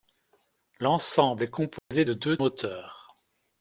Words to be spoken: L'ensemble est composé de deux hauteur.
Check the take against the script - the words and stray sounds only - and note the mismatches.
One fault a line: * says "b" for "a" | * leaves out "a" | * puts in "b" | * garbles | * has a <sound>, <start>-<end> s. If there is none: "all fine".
* has a dropout, 1.8-1.9 s